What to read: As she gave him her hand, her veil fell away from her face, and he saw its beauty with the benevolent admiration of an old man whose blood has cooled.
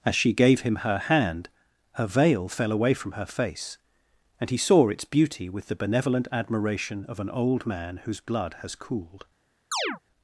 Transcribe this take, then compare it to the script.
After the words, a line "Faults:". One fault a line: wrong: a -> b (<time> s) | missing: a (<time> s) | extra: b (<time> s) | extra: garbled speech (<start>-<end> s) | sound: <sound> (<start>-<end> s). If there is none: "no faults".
As she gave him her hand, her veil fell away from her face, and he saw its beauty with the benevolent admiration of an old man whose blood has cooled.
Faults:
sound: chirp (9.7-10.0 s)